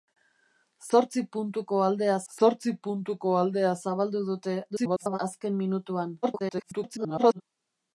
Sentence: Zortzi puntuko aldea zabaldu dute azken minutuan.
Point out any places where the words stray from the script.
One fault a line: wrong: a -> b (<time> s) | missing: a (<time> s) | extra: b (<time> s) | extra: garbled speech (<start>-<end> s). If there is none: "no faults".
extra: zortzi puntuko aldea (2.4 s)
extra: garbled speech (4.7-5.2 s)
extra: garbled speech (6.2-7.4 s)